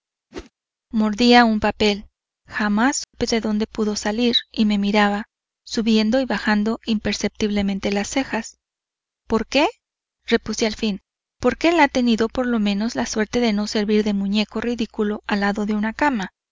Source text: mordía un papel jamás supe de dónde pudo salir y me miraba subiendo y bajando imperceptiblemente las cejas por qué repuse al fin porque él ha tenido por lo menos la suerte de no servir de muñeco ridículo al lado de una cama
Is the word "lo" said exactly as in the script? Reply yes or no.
yes